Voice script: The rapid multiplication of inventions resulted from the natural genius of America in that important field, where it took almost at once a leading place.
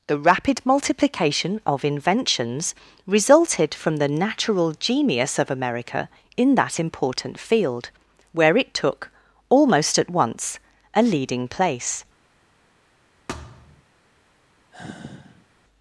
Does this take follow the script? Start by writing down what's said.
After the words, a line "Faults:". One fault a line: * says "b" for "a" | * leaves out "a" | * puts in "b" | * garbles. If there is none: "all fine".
The rapid multiplication of inventions resulted from the natural genius of America in that important field, where it took almost at once a leading place.
Faults:
all fine